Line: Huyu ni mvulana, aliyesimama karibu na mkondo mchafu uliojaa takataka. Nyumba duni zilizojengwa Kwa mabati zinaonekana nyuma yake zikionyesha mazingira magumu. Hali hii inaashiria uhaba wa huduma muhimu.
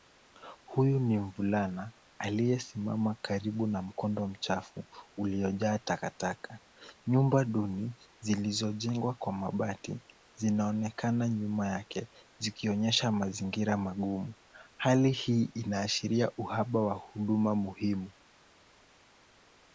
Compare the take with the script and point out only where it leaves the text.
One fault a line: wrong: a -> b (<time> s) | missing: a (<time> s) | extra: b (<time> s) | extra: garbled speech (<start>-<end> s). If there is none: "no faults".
no faults